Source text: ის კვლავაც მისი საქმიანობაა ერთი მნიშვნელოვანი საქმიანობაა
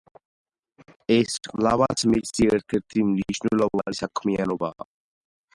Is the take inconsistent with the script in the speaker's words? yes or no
yes